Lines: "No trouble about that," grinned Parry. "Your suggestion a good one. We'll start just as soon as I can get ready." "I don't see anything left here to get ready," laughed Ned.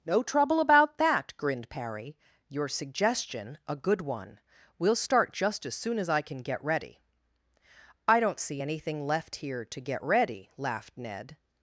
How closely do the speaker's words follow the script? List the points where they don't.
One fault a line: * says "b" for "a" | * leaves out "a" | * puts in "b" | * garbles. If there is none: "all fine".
all fine